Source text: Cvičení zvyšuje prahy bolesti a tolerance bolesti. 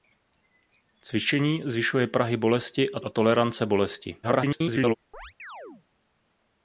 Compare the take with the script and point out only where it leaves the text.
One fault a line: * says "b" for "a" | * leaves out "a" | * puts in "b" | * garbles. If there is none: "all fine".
* puts in "a"
* garbles